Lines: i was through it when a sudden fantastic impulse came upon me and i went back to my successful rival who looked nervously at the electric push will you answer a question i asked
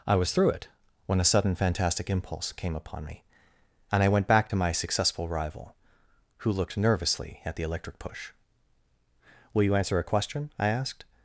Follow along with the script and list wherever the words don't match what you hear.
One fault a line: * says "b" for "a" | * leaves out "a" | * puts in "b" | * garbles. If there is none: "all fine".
all fine